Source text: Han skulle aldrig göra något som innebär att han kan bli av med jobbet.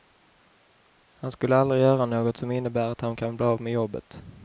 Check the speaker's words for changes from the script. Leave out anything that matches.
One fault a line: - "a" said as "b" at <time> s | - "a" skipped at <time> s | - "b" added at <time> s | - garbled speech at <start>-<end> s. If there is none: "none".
none